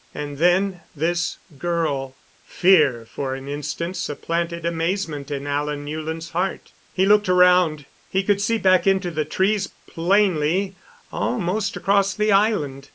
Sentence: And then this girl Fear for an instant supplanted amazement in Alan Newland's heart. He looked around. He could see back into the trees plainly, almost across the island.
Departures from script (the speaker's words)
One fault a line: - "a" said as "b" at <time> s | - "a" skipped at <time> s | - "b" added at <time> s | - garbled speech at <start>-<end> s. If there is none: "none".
none